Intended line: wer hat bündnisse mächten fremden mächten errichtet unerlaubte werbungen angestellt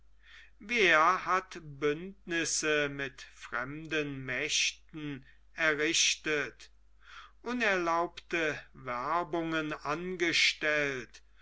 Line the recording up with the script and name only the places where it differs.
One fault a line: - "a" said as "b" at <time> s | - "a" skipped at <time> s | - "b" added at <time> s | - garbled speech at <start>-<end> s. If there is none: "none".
- "mächten" said as "mit" at 2.9 s